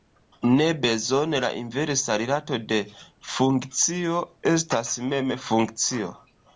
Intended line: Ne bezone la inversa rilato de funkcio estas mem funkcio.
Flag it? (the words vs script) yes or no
no